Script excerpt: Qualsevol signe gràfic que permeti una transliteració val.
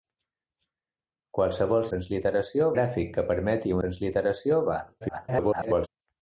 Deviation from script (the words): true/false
true